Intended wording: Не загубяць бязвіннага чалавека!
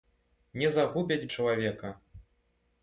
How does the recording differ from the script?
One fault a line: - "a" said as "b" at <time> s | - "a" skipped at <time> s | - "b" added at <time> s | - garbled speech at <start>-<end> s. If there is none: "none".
- "бязвіннага" skipped at 1.3 s